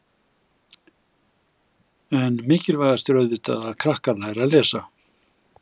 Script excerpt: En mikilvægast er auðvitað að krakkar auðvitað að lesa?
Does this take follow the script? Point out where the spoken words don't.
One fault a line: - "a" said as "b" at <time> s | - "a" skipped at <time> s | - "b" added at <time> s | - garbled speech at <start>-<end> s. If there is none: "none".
- "auðvitað" said as "læri" at 4.2 s